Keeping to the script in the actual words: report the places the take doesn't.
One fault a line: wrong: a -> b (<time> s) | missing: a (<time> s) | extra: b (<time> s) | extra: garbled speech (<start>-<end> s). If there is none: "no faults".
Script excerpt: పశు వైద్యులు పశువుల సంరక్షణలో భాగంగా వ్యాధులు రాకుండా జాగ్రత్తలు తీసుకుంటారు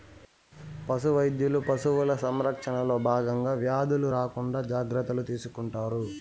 no faults